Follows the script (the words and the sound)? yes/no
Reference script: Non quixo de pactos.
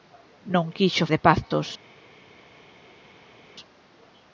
yes